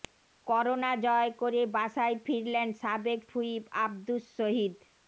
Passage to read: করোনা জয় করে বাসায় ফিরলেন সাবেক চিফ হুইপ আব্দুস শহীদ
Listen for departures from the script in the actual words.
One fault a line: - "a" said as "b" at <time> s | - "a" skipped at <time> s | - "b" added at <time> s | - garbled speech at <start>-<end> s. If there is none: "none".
- "চিফ" skipped at 3.2 s